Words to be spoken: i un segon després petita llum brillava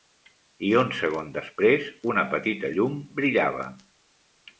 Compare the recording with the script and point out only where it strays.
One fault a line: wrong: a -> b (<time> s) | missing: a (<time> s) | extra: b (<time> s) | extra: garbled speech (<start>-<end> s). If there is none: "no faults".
extra: una (2.1 s)